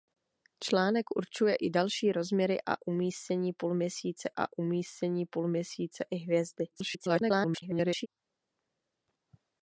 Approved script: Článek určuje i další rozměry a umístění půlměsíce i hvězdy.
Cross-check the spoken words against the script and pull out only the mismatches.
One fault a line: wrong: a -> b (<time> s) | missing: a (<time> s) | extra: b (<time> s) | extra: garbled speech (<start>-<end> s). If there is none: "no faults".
extra: a umístění půlměsíce (4.4 s)
extra: garbled speech (6.7-8.1 s)